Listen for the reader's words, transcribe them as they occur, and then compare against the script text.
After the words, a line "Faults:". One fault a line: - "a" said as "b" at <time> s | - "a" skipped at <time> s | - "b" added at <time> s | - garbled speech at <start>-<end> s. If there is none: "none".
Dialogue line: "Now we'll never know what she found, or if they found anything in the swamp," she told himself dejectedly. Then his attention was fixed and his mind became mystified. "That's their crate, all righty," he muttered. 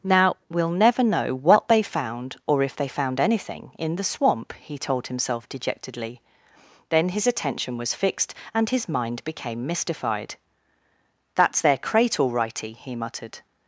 "Now we'll never know what they found, or if they found anything in the swamp," he told himself dejectedly. Then his attention was fixed and his mind became mystified. "That's their crate, all righty," he muttered.
Faults:
- "she" said as "they" at 1.7 s
- "she" said as "he" at 4.5 s